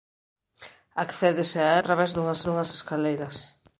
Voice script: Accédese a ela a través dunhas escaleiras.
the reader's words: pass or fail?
fail